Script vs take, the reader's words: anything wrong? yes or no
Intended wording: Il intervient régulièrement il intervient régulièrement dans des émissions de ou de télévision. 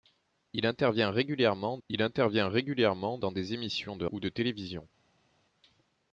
no